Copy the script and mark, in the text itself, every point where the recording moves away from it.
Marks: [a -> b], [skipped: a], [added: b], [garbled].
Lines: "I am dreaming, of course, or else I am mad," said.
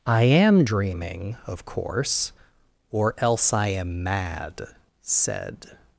"I am dreaming, of course, or else I am mad," said.